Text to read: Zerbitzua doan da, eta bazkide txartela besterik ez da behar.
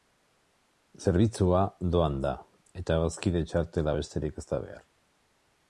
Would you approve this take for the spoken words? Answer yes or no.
yes